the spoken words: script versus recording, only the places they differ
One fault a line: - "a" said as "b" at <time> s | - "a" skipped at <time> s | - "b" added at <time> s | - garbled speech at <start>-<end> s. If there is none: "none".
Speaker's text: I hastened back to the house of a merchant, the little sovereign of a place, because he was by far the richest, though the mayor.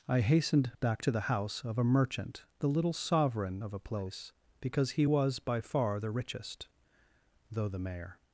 none